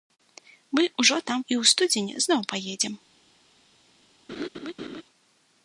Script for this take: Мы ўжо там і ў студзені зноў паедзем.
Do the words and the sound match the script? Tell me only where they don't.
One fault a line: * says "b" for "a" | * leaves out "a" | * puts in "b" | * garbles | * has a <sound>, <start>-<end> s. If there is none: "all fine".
* has a laugh, 4.3-5.0 s